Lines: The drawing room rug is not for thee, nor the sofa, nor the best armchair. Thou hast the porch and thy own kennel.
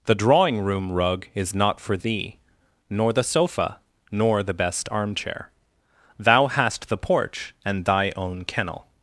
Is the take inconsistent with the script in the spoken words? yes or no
no